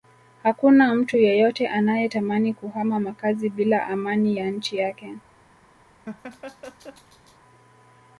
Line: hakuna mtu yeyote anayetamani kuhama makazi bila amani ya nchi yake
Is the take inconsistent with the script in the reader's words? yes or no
no